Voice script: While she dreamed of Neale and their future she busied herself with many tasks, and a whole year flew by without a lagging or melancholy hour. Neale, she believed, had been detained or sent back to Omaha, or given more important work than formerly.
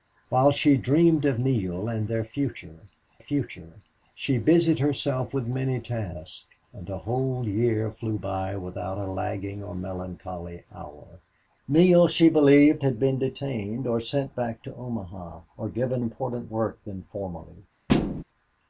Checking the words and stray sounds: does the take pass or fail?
fail